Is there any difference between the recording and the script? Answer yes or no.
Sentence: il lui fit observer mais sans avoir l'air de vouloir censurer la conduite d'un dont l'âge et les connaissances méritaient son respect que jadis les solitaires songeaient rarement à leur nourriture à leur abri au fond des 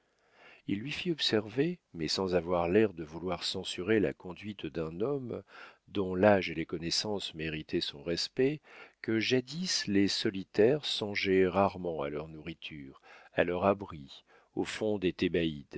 yes